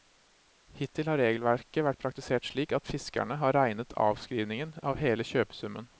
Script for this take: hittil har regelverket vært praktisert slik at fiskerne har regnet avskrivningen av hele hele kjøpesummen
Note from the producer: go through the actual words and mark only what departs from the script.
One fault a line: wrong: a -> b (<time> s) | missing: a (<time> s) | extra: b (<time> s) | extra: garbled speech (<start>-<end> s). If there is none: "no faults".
missing: hele (5.2 s)